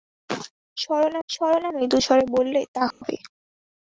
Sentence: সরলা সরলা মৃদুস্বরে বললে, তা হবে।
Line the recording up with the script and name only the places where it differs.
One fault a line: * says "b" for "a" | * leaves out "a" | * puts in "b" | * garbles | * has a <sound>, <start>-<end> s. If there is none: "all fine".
* has a dropout, 2.9-3.0 s